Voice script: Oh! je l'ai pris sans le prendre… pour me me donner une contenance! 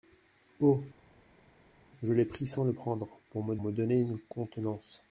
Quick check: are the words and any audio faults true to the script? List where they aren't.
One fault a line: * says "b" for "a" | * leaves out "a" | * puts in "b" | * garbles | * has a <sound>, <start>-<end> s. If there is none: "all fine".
all fine